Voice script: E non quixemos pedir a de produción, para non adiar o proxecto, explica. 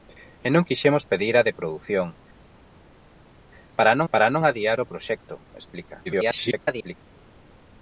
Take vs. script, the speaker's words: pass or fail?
fail